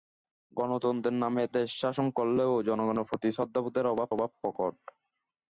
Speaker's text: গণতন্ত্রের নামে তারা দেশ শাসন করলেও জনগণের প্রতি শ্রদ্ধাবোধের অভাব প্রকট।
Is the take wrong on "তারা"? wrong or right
wrong